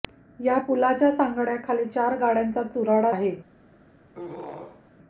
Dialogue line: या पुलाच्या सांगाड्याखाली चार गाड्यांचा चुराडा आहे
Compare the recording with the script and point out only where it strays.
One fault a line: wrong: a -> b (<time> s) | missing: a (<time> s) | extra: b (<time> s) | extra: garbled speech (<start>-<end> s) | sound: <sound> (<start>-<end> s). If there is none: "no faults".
sound: throat clearing (4.1-4.9 s)